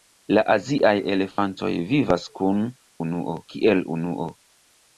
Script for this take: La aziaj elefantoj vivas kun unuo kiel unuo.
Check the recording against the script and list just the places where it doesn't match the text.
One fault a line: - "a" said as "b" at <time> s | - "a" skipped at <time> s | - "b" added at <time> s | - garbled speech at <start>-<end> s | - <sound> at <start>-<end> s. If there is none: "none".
- dropout at 1.3-1.4 s